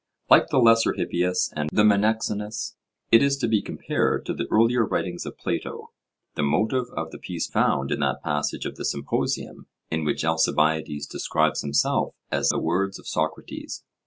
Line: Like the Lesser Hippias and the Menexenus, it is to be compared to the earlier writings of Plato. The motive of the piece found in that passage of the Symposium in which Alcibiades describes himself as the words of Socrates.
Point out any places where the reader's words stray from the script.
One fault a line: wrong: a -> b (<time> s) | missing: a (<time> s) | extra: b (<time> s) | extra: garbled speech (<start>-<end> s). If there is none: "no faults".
no faults